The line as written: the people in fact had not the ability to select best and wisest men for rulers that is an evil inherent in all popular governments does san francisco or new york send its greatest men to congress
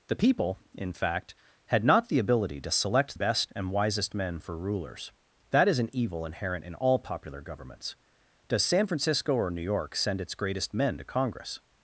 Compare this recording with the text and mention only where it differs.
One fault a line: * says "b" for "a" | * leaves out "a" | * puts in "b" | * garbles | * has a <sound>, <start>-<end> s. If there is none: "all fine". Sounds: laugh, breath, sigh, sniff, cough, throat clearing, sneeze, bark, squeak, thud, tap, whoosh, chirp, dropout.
all fine